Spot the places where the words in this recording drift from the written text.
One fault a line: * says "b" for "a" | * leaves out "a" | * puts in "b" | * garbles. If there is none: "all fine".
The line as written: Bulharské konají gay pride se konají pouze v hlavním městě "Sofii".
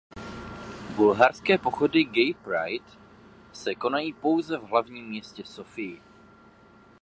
* says "pochody" for "konají"